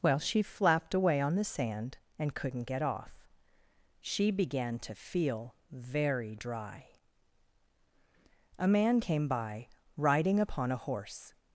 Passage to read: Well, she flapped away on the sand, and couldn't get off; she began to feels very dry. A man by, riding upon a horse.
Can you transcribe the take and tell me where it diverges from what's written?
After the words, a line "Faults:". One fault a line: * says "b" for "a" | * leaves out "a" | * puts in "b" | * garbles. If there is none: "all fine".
Well, she flapped away on the sand, and couldn't get off; she began to feel very dry. A man came by, riding upon a horse.
Faults:
* says "feel" for "feels"
* puts in "came"